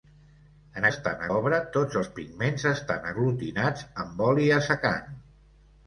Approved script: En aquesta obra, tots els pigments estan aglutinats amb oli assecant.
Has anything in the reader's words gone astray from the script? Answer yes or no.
yes